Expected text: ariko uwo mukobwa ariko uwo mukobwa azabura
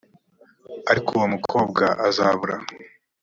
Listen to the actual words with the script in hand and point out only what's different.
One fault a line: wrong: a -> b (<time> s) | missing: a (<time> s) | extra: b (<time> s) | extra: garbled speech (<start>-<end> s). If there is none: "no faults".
missing: ariko uwo mukobwa (1.8 s)